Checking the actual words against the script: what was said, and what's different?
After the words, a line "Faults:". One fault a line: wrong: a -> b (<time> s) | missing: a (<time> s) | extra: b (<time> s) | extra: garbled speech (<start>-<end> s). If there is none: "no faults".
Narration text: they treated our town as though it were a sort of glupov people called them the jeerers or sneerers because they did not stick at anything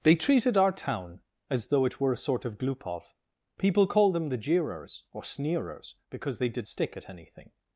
they treated our town as though it were a sort of glupov people called them the jeerers or sneerers because they did stick at anything
Faults:
missing: not (6.7 s)